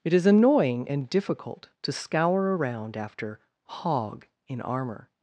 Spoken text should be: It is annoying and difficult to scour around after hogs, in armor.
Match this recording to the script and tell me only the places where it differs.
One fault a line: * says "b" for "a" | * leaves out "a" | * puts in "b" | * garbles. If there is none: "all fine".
* says "hog" for "hogs"